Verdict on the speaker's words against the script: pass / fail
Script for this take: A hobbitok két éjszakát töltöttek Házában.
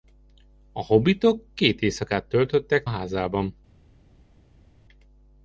pass